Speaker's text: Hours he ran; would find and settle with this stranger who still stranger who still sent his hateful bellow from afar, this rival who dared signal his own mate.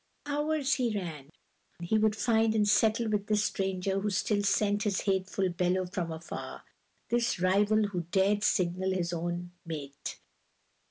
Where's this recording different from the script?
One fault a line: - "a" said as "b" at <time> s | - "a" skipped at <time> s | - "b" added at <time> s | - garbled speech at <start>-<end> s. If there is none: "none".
- "he" added at 1.8 s
- "stranger who still" skipped at 4.4 s